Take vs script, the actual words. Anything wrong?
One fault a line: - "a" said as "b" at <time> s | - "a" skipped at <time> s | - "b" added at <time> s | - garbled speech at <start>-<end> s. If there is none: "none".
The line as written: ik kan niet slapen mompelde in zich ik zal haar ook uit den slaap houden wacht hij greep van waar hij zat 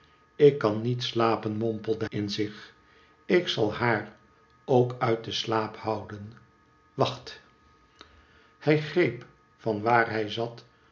none